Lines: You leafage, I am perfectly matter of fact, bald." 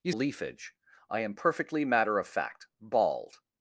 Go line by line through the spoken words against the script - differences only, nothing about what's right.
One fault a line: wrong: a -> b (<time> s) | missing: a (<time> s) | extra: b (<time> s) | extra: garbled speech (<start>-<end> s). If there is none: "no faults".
no faults